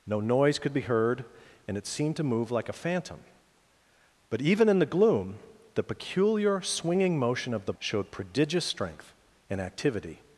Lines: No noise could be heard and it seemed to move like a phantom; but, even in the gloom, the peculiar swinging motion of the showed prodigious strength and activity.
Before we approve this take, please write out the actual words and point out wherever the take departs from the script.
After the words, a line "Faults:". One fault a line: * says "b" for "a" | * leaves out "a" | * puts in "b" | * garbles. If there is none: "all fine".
No noise could be heard and it seemed to move like a phantom; but, even in the gloom, the peculiar swinging motion of the showed prodigious strength and activity.
Faults:
all fine